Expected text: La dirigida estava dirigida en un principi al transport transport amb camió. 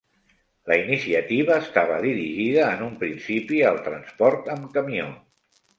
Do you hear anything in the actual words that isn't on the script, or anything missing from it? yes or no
yes